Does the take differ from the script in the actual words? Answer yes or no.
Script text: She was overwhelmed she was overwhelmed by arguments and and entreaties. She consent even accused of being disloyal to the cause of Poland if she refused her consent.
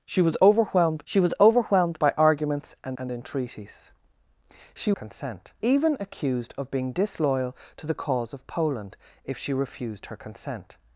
no